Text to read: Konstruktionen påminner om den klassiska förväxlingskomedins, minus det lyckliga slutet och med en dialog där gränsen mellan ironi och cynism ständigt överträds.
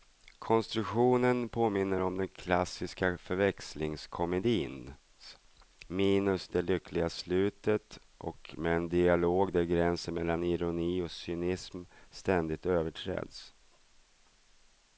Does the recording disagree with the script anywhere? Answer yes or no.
no